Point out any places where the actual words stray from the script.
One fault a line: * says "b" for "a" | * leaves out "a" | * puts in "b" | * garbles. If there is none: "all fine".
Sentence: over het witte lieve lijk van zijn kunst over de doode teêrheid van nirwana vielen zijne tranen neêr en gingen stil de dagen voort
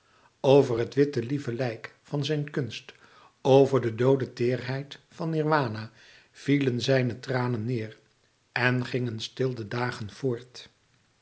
all fine